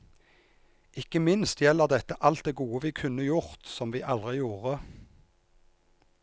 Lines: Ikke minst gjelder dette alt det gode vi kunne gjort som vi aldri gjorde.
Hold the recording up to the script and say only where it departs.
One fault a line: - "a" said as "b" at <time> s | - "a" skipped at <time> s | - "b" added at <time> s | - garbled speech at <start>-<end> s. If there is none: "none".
none